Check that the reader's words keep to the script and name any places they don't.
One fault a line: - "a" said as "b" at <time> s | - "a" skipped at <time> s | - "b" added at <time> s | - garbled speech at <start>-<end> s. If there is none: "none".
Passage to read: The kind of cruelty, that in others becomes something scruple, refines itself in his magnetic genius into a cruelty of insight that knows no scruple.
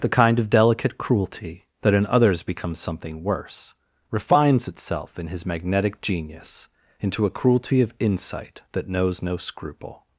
- "delicate" added at 0.5 s
- "scruple" said as "worse" at 3.2 s